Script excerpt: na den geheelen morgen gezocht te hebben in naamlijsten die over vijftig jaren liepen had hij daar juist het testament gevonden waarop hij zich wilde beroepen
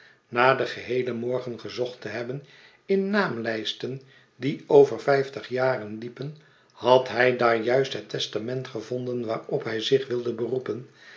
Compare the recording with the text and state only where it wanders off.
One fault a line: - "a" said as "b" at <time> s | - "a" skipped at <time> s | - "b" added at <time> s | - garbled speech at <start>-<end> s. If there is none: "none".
none